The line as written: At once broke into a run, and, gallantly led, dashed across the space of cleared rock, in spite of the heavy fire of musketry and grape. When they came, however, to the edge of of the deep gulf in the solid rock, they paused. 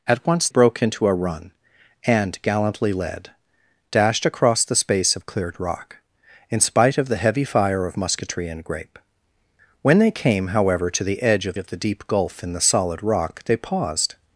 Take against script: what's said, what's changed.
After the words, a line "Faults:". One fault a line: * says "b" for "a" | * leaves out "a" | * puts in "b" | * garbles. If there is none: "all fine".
At once broke into a run, and, gallantly led, dashed across the space of cleared rock, in spite of the heavy fire of musketry and grape. When they came, however, to the edge of of the deep gulf in the solid rock, they paused.
Faults:
all fine